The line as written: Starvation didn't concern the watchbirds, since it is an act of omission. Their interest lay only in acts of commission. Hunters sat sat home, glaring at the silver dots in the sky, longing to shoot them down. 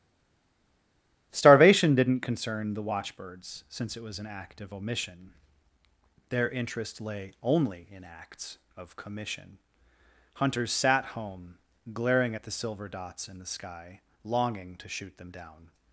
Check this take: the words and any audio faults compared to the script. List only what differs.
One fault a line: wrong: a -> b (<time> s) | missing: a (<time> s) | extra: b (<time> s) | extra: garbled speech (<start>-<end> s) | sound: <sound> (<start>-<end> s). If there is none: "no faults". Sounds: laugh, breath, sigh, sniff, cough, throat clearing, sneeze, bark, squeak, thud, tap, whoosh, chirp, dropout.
wrong: is -> was (4.0 s)
missing: sat (11.0 s)